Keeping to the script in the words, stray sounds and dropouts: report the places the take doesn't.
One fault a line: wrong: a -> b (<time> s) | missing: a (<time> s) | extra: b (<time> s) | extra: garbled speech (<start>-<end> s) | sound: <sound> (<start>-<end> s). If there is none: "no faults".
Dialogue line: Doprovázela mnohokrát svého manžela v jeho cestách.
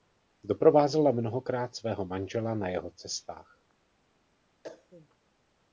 wrong: v -> na (2.5 s)
sound: cough (4.6-5.1 s)